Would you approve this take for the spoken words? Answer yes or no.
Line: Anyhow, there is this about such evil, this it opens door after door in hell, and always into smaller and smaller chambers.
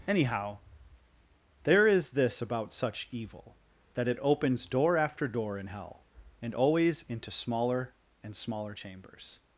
no